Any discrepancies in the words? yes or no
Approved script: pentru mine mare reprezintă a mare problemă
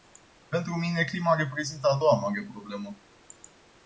yes